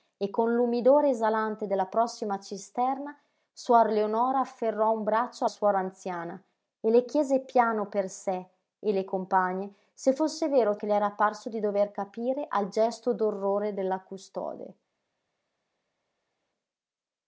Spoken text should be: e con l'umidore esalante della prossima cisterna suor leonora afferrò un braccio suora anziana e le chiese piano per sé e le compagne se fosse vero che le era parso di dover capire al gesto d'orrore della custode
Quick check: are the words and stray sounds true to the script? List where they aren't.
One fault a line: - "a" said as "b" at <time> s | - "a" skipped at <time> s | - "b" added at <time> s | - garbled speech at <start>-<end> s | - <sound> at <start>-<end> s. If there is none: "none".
none